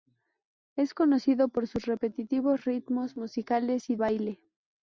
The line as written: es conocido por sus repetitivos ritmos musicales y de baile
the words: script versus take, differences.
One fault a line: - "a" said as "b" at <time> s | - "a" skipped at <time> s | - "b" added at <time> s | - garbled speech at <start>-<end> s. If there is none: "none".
- "de" skipped at 4.0 s